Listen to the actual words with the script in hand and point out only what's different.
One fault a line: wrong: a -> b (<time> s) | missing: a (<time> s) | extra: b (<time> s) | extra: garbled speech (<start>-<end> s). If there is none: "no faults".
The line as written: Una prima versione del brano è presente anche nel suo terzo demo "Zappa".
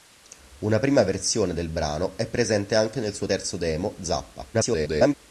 extra: garbled speech (4.5-5.1 s)